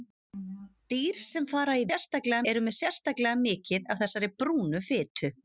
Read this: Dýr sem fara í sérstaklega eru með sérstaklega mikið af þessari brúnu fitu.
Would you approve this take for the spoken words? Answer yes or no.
yes